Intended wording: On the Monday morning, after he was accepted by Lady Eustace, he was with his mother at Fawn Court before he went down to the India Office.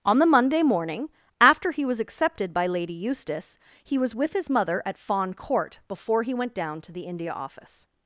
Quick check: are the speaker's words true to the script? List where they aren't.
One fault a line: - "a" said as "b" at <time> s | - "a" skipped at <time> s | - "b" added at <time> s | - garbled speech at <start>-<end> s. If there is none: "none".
none